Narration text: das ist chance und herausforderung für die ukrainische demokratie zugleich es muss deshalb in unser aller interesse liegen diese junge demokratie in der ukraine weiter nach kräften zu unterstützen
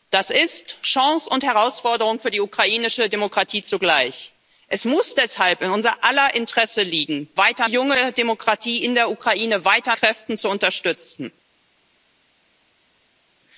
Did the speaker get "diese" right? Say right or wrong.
wrong